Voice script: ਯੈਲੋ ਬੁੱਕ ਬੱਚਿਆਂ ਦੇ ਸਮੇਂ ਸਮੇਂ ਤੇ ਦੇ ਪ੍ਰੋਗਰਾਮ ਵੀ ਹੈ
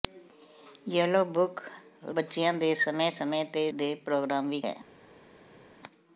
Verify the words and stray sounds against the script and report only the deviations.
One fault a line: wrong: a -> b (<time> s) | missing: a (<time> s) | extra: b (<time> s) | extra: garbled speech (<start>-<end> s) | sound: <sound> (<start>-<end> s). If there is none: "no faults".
no faults